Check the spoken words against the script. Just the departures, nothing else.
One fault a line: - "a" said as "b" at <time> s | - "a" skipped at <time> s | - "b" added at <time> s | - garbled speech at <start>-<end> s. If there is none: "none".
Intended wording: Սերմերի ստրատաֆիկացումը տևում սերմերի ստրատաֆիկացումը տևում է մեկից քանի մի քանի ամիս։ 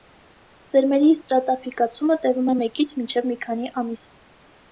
- "սերմերի ստրատաֆիկացումը տևում" skipped at 2.5 s
- "քանի" said as "մինչև" at 3.0 s